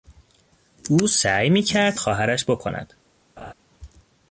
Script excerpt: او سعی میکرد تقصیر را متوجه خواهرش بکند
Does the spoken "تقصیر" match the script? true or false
false